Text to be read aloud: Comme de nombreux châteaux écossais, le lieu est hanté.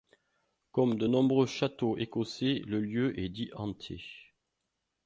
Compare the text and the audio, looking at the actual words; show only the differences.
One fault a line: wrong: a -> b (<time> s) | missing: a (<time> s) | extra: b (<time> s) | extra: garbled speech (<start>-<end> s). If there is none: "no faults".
extra: dit (3.3 s)